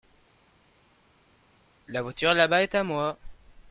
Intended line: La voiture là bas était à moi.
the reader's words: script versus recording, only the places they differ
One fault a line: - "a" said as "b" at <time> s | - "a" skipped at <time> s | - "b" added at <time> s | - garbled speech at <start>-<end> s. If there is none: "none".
- "était" said as "est" at 2.6 s